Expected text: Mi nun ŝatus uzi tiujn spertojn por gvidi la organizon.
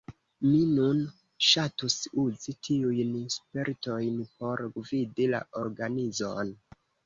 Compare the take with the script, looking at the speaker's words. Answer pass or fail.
pass